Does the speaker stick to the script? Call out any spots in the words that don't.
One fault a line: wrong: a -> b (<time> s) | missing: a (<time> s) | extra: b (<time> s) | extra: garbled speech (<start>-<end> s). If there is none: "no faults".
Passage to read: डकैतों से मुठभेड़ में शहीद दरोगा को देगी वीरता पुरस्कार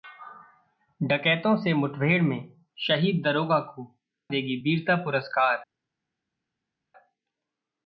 no faults